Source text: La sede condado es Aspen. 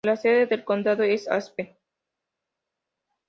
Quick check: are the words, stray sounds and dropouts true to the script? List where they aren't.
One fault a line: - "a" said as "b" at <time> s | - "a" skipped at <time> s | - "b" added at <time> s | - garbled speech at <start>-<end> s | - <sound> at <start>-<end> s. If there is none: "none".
- "del" added at 0.5 s